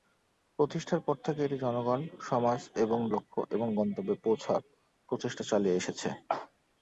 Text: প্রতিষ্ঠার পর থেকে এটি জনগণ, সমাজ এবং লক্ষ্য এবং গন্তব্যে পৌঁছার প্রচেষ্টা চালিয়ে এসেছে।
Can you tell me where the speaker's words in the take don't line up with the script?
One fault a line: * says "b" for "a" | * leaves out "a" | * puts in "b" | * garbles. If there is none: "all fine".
all fine